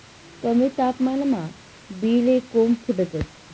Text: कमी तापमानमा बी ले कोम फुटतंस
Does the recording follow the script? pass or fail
pass